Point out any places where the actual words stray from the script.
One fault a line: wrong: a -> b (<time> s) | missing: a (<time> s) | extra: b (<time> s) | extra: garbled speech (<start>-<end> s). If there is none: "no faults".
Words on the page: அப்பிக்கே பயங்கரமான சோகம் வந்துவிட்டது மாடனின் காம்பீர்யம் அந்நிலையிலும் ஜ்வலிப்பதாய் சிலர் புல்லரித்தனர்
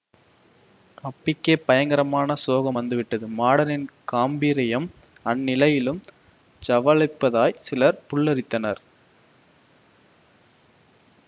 no faults